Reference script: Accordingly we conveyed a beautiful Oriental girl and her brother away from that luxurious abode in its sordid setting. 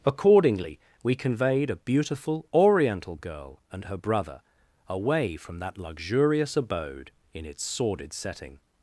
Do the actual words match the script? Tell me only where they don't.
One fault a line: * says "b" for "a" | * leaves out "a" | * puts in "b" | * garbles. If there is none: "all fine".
all fine